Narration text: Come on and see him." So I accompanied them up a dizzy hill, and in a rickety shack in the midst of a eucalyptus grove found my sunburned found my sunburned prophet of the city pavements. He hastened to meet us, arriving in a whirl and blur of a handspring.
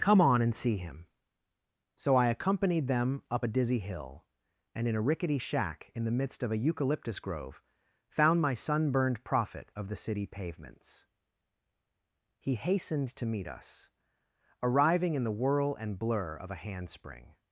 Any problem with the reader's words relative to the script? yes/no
yes